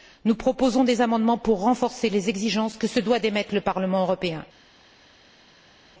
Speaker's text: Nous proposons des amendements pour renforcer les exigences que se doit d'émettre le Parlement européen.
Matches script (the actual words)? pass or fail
pass